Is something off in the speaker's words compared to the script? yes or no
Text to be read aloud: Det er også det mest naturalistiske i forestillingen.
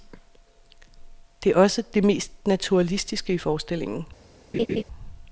no